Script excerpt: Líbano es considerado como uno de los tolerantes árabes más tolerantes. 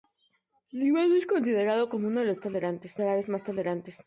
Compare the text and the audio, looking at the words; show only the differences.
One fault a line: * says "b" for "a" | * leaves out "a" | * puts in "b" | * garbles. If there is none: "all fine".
all fine